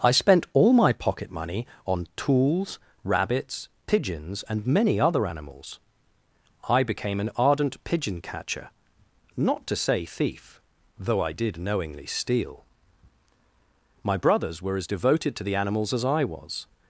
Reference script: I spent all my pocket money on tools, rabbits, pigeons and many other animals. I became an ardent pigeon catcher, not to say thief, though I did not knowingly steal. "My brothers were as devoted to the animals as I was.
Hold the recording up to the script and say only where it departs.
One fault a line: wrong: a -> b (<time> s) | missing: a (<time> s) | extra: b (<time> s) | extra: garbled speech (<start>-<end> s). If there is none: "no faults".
missing: not (11.6 s)